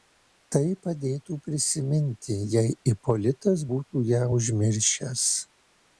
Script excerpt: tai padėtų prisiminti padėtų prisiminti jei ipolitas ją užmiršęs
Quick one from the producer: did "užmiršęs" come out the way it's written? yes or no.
yes